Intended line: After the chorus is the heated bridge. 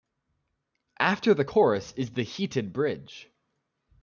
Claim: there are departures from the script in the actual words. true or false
false